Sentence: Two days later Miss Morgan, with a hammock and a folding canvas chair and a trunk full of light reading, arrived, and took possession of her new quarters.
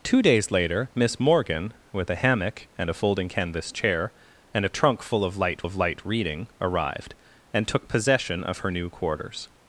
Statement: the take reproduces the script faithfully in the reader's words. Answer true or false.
false